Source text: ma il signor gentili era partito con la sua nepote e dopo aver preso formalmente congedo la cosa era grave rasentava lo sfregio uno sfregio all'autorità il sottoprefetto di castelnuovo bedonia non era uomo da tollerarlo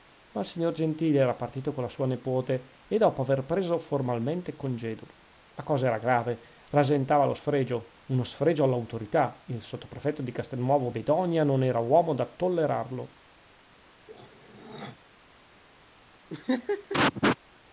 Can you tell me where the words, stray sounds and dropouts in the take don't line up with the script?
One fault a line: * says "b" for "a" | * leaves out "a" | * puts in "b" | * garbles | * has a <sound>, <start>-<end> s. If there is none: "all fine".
* has a throat clearing, 14.1-15.0 s
* has a laugh, 16.3-17.4 s